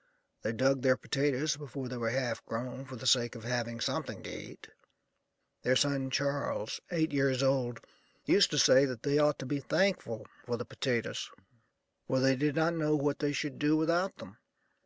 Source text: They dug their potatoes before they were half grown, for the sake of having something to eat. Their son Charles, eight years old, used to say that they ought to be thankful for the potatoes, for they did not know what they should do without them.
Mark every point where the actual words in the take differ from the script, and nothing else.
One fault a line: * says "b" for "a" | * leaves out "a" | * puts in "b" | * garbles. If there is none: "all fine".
all fine